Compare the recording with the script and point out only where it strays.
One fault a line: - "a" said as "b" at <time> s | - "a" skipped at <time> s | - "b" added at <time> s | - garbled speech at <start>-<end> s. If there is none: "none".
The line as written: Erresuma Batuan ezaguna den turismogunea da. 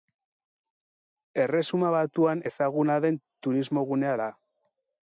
none